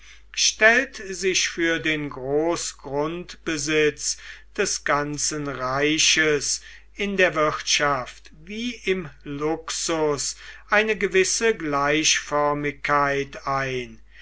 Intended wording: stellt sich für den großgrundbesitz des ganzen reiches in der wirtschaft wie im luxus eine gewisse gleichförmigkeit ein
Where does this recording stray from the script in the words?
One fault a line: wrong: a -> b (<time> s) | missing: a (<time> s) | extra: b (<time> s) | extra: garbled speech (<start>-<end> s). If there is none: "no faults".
no faults